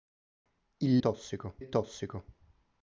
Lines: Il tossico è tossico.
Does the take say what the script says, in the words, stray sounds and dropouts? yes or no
yes